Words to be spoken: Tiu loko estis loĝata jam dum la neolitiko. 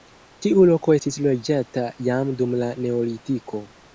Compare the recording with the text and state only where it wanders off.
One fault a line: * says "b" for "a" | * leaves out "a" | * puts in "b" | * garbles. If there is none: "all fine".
all fine